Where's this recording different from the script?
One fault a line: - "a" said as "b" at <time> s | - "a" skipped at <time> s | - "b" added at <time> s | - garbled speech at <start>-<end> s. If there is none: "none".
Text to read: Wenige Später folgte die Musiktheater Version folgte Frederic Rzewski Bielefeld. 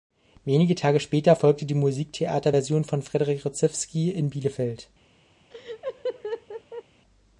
- "Tage" added at 0.7 s
- "folgte" said as "von" at 2.8 s
- "in" added at 4.1 s